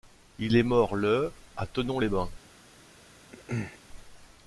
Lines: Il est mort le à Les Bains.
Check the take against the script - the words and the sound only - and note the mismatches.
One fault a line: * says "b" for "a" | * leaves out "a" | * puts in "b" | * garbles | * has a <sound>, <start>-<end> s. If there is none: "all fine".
* puts in "Thonon"
* has a throat clearing, 3.3-3.8 s